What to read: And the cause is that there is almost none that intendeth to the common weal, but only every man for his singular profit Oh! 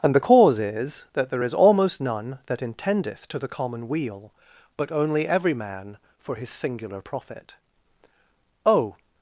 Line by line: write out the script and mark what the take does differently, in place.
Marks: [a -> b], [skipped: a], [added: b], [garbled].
And the cause is that there is almost none that intendeth to the common weal, but only every man for his singular profit Oh!